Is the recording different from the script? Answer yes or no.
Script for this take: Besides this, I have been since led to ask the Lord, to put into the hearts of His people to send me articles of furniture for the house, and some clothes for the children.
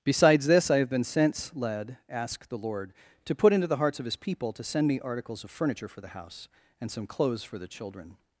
yes